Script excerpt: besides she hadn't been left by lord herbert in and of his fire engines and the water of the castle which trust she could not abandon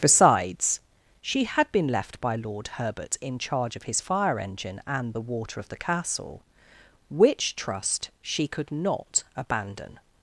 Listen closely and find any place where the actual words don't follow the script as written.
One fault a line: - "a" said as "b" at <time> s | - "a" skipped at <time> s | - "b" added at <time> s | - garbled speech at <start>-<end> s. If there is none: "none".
- "hadn't" said as "had" at 1.4 s
- "and" said as "charge" at 3.4 s
- "engines" said as "engine" at 4.4 s